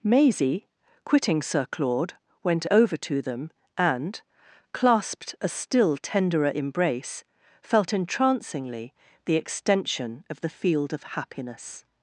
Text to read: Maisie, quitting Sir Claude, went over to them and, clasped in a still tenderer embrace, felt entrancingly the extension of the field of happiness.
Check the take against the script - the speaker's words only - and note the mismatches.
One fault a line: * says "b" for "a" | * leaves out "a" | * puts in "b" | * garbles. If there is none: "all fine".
* leaves out "in"